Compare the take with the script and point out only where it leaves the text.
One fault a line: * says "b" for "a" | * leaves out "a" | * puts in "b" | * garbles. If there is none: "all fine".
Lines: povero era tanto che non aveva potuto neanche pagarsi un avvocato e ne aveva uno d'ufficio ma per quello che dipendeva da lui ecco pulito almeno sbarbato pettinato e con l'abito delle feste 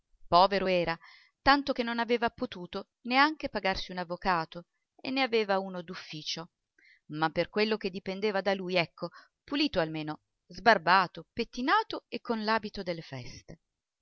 all fine